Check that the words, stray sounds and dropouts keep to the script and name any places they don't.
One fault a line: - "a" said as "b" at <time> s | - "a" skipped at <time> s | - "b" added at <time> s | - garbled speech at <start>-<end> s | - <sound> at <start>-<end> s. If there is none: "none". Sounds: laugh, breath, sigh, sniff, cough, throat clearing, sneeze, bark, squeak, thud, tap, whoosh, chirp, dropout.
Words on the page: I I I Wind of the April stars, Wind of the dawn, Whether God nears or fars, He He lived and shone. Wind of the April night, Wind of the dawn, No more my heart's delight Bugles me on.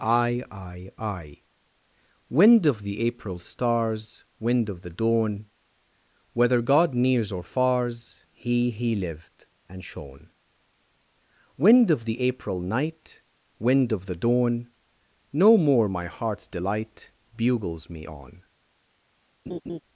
- laugh at 19.5-19.8 s